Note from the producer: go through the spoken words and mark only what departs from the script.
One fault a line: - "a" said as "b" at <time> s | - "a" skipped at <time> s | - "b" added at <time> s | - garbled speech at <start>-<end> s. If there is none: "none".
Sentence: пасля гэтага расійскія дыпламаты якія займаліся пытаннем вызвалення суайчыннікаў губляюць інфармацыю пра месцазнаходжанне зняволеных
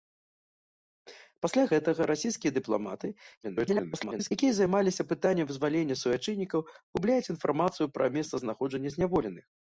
- garbled speech at 3.4-4.3 s